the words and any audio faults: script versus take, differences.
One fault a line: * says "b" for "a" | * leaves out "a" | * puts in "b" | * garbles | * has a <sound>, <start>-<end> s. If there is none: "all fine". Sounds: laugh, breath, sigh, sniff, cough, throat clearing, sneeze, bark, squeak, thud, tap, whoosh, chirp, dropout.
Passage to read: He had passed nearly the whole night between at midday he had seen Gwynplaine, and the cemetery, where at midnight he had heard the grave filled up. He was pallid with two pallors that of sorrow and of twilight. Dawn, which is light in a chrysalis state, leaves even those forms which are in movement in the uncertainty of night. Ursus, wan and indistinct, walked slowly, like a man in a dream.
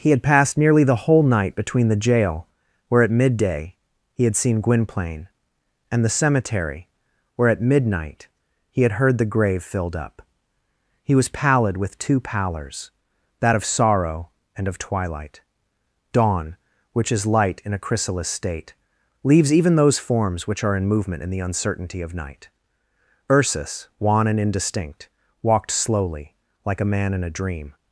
* puts in "the jail where"